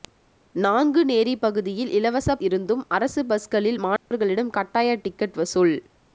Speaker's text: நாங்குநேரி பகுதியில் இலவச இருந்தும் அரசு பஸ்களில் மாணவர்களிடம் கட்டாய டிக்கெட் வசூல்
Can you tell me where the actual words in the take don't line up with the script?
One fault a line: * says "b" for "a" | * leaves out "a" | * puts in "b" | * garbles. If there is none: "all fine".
all fine